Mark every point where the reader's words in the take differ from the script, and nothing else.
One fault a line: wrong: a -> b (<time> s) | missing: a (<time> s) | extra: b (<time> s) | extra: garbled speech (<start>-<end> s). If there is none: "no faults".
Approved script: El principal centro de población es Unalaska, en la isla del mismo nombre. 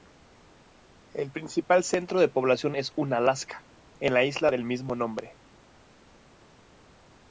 no faults